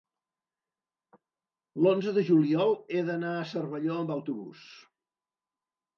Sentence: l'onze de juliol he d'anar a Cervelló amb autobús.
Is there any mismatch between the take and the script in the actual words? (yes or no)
no